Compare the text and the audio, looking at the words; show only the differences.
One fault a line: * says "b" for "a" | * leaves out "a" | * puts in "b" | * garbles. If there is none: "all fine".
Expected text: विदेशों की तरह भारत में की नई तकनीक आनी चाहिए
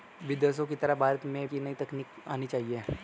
all fine